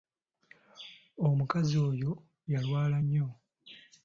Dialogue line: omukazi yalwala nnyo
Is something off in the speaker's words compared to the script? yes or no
yes